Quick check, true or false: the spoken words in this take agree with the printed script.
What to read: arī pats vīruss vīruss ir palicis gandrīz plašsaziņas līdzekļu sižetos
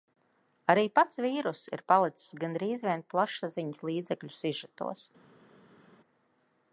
false